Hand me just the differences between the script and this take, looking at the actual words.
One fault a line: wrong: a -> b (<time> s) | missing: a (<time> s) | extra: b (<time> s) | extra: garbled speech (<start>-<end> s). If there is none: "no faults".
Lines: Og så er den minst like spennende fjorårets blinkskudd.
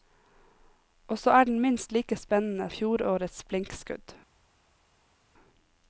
no faults